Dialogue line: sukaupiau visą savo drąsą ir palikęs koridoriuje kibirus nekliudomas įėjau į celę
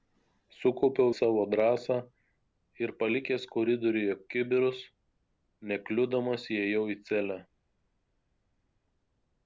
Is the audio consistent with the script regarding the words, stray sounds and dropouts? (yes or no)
no